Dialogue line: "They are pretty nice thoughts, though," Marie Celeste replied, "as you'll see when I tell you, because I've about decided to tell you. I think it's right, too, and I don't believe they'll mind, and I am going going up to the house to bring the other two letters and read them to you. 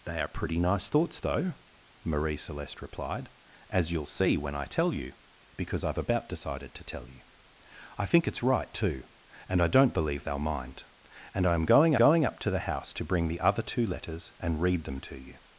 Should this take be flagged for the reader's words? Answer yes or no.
no